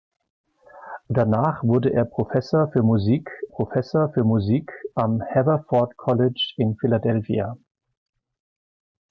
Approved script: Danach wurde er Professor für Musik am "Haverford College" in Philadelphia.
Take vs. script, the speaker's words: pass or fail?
fail